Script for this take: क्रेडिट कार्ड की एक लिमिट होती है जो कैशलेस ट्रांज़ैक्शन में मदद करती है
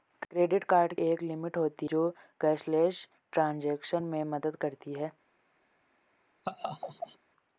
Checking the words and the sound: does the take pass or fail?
fail